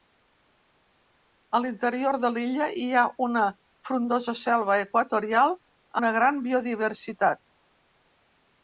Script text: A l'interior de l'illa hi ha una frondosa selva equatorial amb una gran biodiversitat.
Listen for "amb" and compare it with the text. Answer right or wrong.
wrong